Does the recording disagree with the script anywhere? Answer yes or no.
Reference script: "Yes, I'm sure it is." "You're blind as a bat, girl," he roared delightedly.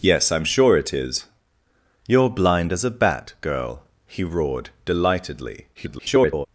yes